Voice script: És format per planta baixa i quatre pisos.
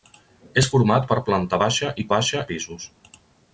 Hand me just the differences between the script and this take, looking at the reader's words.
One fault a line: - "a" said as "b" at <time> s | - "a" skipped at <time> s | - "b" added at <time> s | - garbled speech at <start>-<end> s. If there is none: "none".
- "quatre" said as "baixa" at 2.1 s